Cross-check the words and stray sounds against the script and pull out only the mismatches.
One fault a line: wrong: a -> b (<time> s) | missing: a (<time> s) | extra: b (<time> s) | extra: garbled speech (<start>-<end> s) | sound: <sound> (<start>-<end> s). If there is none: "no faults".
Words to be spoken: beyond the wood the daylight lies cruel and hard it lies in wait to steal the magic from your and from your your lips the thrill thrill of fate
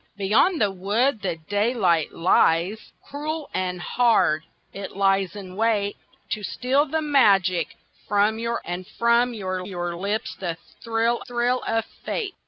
no faults